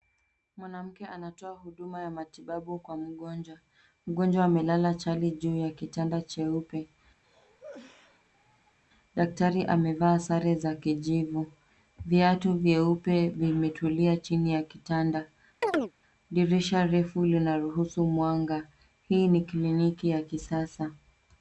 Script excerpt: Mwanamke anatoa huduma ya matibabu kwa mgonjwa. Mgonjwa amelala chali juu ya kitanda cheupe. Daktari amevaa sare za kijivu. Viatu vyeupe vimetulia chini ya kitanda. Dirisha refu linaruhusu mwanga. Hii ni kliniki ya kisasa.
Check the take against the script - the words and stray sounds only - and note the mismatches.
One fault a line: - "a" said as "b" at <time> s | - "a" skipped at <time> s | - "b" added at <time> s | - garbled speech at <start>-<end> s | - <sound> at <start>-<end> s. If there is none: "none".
- cough at 7.2-8.8 s
- chirp at 15.6-15.9 s